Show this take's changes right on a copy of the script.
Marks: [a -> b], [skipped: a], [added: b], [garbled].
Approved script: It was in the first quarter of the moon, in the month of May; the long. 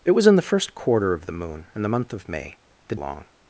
It was in the first quarter of the moon, in the month of May; the long.